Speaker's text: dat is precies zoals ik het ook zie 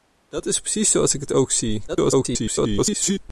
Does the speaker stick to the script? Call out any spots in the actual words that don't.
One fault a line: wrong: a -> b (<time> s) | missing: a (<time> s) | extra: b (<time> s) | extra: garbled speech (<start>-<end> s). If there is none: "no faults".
extra: garbled speech (1.9-3.2 s)